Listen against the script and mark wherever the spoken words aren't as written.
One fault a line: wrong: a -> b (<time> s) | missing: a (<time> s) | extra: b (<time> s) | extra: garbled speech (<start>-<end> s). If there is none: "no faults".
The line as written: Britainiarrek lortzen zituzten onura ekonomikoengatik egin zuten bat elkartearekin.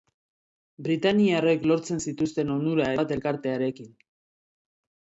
missing: ekonomikoengatik egin zuten (2.9 s)